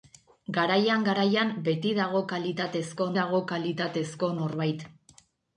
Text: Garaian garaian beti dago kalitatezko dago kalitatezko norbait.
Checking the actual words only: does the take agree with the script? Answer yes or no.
yes